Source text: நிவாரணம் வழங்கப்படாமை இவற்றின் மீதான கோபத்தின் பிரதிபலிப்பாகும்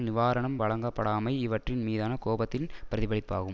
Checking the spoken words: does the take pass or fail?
pass